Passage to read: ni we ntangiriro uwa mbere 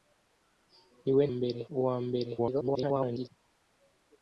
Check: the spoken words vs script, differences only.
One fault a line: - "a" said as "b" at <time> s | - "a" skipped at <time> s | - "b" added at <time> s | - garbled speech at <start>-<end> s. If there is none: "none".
- "ntangiriro" said as "mbere" at 1.3 s
- garbled speech at 2.4-3.3 s